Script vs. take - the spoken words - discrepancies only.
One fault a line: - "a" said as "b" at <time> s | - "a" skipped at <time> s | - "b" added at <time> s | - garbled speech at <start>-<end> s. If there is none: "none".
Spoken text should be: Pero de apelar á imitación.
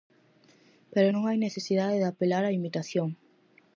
- "non hai necesidade" added at 1.1 s